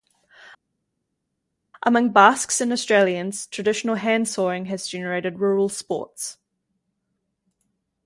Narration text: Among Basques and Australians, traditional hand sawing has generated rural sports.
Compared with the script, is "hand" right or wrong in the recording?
right